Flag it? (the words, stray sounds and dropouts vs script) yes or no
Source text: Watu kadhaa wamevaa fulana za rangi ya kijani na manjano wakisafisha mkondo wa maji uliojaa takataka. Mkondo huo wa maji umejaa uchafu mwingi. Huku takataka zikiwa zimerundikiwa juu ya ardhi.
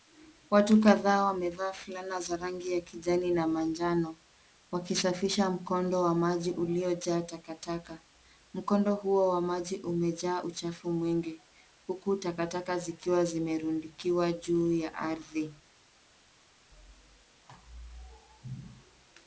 no